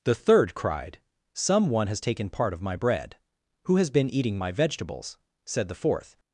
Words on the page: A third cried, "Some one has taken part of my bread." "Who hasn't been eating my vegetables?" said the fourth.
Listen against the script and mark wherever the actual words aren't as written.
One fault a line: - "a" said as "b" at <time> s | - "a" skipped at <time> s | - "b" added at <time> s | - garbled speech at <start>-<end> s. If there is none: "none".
- "A" said as "The" at 0.0 s
- "hasn't" said as "has" at 3.8 s